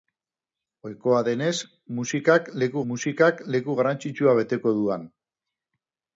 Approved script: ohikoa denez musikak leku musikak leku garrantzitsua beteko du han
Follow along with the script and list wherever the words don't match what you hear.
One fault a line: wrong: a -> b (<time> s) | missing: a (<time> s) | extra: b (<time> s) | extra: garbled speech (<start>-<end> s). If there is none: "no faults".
no faults